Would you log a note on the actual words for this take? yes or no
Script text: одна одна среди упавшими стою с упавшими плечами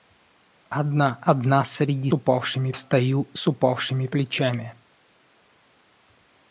no